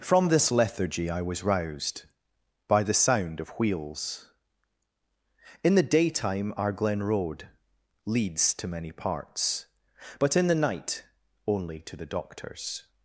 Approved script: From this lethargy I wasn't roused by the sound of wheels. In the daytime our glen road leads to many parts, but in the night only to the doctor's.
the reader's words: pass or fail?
fail